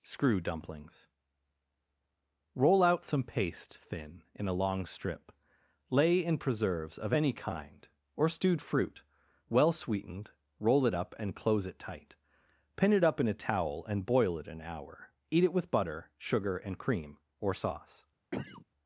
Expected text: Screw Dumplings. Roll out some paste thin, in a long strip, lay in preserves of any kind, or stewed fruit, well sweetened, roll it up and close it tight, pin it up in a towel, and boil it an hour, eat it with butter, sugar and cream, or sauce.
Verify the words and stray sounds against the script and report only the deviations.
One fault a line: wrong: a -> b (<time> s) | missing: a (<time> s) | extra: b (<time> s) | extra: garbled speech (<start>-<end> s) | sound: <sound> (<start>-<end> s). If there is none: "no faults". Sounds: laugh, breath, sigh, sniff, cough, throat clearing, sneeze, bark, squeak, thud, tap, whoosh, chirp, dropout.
sound: cough (18.3-18.7 s)